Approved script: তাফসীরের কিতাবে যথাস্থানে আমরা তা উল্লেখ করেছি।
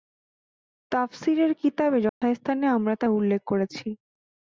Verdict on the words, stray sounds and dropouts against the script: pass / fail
fail